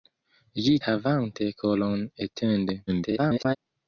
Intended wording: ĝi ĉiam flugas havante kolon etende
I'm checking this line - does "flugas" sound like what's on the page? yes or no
no